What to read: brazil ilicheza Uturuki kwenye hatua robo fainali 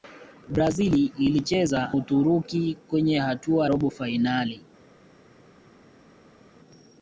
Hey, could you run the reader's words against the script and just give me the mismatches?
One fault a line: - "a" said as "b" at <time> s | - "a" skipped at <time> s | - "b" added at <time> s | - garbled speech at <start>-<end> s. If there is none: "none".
none